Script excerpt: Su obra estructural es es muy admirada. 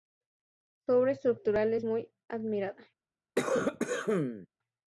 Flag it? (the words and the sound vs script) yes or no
yes